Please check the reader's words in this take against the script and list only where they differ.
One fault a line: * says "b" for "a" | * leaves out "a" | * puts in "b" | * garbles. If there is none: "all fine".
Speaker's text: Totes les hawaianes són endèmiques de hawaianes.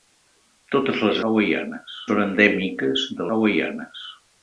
all fine